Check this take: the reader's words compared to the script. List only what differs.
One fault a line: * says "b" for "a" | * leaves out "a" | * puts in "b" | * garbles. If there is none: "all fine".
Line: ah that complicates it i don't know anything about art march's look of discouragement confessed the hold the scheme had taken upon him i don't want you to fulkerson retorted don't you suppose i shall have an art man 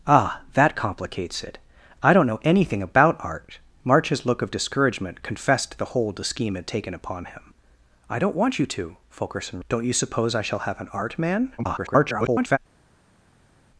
* leaves out "retorted"
* garbles